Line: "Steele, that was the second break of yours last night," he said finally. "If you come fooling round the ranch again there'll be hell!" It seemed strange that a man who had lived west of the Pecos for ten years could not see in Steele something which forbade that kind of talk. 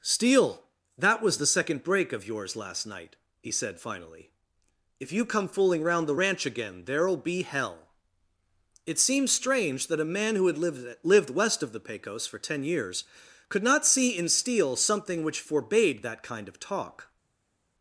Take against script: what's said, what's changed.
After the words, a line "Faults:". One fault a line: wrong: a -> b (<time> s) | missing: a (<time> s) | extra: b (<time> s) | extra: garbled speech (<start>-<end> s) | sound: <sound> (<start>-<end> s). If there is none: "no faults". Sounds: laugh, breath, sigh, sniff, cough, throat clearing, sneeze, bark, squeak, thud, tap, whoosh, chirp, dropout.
"Steele, that was the second break of yours last night," he said finally. "If you come fooling round the ranch again there'll be hell!" It seemed strange that a man who had lived lived west of the Pecos for ten years could not see in Steele something which forbade that kind of talk.
Faults:
extra: lived (11.0 s)